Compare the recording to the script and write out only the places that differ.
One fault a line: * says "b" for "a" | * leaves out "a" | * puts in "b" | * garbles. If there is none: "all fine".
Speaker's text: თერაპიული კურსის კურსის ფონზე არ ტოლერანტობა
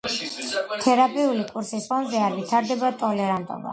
* leaves out "კურსის"
* puts in "ვითარდება"